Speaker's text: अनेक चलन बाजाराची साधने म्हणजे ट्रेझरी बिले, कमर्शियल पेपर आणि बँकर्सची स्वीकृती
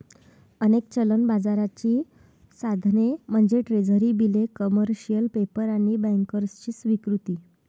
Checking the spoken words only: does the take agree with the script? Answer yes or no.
yes